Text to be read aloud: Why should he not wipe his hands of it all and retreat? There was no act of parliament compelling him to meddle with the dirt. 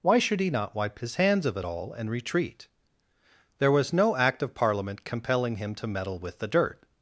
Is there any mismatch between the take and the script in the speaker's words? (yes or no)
no